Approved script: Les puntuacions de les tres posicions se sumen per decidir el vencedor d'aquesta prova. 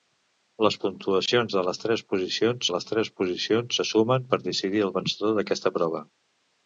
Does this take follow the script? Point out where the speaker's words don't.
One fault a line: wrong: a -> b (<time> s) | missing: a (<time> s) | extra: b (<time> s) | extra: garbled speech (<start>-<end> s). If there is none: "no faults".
extra: les tres posicions (2.7 s)